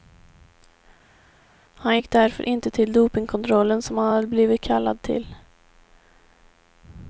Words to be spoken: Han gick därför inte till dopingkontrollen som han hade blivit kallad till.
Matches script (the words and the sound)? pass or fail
pass